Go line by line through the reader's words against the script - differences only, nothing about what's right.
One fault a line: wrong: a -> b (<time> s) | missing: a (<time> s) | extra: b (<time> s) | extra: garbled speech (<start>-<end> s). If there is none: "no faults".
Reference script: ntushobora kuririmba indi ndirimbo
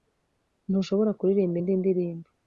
no faults